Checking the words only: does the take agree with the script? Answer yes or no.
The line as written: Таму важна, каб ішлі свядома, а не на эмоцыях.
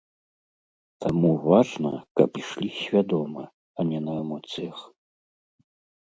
yes